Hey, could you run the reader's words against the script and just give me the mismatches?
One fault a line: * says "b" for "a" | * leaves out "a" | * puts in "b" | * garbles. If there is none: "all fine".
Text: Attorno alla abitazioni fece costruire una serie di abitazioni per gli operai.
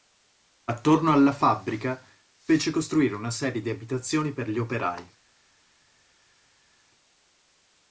* says "fabbrica" for "abitazioni"